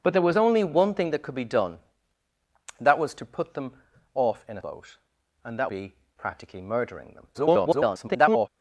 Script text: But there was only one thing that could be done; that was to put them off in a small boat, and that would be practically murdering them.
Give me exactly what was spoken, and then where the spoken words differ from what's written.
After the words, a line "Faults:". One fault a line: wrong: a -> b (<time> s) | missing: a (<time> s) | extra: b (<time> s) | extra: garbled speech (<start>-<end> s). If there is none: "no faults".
But there was only one thing that could be done; that was to put them off in a boat, and that be practically murdering them. [garbled]
Faults:
missing: small (4.6 s)
missing: would (5.7 s)
extra: garbled speech (7.3-8.5 s)